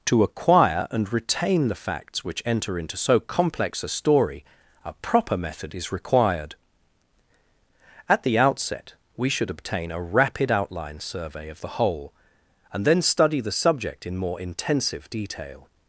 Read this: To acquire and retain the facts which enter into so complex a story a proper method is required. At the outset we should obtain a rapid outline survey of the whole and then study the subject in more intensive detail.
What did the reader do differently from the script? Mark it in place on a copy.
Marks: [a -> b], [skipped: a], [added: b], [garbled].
To acquire and retain the facts which enter into so complex a story a proper method is required. At the outset we should obtain a rapid outline survey of the whole and then study the subject in more intensive detail.